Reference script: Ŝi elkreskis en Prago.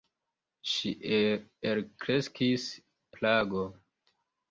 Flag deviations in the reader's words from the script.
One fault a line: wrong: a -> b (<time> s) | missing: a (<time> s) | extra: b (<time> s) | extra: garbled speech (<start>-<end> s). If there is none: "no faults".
missing: en (2.7 s)